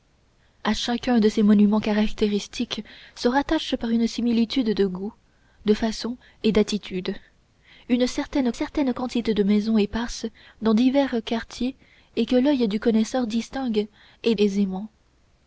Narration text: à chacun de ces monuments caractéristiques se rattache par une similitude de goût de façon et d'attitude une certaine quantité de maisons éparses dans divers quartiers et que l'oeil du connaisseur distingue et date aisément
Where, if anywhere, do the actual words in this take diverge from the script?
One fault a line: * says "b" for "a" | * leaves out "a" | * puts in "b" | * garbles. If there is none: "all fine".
* puts in "certaine"
* leaves out "date"